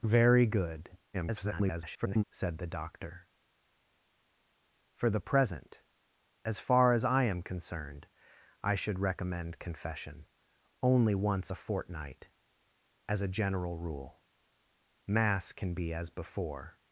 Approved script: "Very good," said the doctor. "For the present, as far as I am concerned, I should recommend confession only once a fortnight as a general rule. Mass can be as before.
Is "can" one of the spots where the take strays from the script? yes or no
no